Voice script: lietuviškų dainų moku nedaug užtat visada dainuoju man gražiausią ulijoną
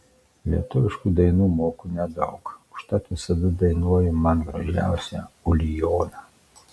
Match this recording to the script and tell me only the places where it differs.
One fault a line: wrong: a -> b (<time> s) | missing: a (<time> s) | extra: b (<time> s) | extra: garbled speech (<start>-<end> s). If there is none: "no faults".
no faults